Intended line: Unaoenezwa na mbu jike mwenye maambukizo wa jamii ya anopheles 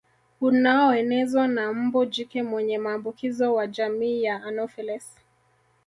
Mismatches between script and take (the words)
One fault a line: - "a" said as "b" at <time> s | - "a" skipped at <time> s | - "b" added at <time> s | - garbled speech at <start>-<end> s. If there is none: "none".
none